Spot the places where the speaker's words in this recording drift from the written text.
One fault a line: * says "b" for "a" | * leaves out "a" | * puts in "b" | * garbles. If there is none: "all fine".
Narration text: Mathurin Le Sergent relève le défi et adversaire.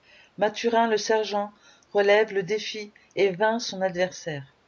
* puts in "vainc son"